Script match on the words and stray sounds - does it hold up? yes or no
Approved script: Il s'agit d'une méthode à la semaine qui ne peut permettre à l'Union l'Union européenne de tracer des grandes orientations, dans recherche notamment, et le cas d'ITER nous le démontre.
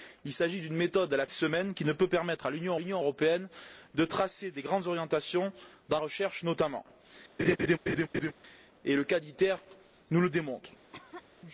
no